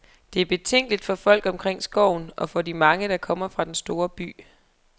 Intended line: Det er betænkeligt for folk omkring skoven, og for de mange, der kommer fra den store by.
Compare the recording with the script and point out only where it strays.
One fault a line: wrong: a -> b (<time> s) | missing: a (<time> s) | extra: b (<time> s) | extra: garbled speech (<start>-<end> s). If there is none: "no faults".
no faults